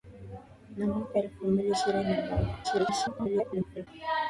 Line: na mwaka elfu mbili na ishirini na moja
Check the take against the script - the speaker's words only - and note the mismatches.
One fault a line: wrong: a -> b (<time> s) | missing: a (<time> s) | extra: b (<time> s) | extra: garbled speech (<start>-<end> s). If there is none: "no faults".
missing: na (1.7 s)
extra: garbled speech (2.6-3.9 s)